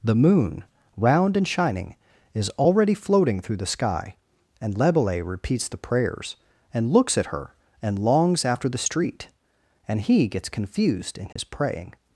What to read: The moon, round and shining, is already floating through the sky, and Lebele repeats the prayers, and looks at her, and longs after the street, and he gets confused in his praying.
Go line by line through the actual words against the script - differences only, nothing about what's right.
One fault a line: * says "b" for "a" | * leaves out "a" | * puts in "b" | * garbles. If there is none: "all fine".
all fine